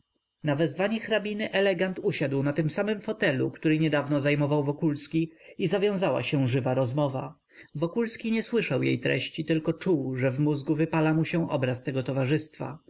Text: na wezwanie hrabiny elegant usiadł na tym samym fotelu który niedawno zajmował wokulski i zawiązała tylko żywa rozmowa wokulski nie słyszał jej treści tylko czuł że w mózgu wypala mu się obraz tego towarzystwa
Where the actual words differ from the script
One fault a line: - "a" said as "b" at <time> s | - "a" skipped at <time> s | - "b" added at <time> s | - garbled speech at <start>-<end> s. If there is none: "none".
- "tylko" said as "się" at 6.2 s